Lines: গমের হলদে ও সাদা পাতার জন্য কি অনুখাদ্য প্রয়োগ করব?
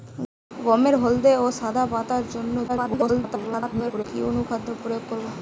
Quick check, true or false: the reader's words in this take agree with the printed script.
false